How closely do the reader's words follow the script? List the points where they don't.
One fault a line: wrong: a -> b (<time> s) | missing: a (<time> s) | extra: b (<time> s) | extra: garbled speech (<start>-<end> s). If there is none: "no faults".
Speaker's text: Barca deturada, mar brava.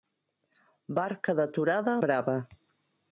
missing: mar (2.0 s)